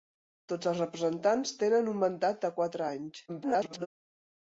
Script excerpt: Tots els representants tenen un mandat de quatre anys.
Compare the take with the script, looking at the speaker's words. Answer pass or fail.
fail